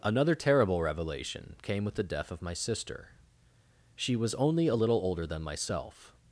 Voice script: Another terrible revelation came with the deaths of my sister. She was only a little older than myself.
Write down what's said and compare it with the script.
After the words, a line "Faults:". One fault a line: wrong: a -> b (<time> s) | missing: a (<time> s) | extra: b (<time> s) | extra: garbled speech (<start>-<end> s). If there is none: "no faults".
Another terrible revelation came with the death of my sister. She was only a little older than myself.
Faults:
wrong: deaths -> death (2.0 s)